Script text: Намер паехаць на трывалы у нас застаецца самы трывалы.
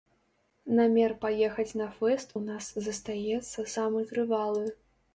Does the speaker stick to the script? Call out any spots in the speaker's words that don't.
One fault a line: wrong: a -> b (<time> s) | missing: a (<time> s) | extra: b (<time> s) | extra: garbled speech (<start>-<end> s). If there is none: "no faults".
wrong: трывалы -> фэст (2.0 s)